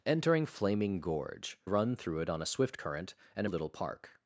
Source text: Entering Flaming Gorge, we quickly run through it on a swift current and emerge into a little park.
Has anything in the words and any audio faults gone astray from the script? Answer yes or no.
yes